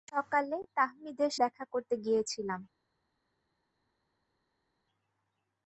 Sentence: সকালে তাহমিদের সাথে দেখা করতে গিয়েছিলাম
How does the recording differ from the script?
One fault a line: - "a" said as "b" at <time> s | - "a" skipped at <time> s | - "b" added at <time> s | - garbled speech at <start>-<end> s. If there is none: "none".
- "সাথে" skipped at 1.3 s